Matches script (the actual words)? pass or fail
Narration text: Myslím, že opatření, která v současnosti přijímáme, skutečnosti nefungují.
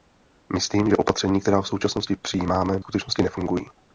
pass